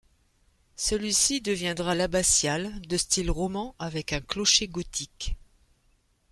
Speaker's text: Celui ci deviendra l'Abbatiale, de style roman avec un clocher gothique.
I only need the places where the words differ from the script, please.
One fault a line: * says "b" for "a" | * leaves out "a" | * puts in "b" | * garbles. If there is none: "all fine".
all fine